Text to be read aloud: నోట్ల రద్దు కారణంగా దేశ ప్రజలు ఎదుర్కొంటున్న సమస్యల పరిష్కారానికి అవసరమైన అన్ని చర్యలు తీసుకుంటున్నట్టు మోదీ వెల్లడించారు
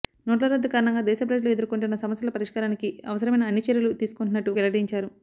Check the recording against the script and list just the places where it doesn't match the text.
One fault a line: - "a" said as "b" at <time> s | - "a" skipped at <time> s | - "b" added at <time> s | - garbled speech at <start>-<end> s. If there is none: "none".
- "మోదీ" skipped at 4.5 s